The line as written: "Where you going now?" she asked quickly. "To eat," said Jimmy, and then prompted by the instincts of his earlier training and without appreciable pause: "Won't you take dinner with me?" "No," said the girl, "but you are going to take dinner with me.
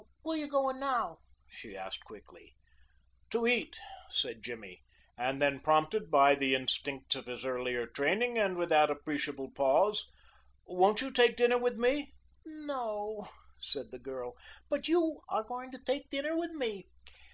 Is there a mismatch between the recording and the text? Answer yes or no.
no